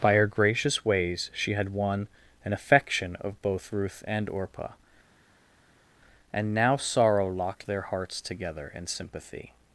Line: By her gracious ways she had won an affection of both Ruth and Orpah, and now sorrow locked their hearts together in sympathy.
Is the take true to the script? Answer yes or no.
yes